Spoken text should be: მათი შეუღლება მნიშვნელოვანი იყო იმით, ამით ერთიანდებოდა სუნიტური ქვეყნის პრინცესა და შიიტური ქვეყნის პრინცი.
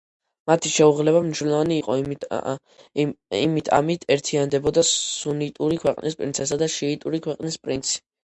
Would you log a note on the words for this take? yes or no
no